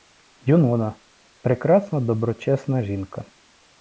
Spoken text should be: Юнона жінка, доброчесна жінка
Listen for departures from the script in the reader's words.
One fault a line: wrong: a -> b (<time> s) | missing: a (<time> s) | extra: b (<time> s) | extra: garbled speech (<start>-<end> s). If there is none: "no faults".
wrong: жінка -> прекрасна (1.4 s)